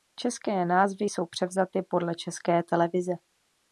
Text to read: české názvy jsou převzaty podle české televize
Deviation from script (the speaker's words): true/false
false